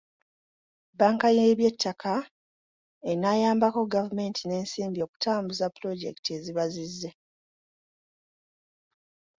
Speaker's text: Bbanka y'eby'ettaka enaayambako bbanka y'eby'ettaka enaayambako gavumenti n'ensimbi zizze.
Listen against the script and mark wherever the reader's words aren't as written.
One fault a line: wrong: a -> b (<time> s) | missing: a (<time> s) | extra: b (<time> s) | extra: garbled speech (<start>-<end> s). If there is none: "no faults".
wrong: bbanka y'eby'ettaka enaayambako gavumenti n'ensimbi -> gavumenti n'ensimbi okutambuza pulojekiti eziba (4.0 s)